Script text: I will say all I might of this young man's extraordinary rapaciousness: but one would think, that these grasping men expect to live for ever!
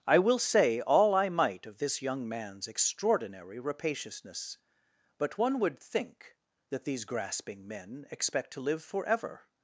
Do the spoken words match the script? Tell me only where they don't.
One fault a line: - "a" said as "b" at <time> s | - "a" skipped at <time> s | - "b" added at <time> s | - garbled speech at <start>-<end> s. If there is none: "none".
none